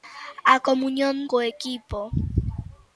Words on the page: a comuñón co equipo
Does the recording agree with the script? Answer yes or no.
yes